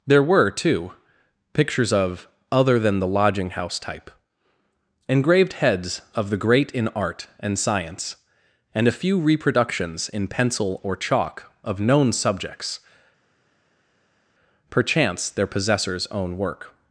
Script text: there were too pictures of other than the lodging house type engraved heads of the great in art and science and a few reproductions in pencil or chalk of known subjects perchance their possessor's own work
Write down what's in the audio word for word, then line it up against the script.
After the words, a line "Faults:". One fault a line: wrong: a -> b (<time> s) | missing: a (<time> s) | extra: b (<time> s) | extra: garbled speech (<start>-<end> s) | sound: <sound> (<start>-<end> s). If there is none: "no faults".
there were too pictures of other than the lodging house type engraved heads of the great in art and science and a few reproductions in pencil or chalk of known subjects perchance their possessor's own work
Faults:
no faults